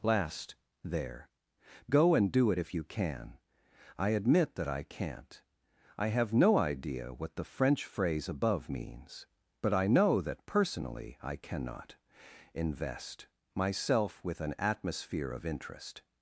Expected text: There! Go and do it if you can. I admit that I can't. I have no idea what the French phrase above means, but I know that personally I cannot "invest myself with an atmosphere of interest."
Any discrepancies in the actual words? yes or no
yes